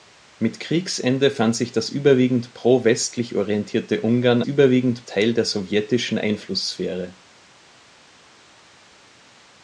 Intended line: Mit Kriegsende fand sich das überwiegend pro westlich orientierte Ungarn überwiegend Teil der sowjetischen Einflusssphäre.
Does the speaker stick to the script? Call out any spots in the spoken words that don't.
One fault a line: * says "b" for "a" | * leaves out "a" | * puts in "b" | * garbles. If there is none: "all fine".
all fine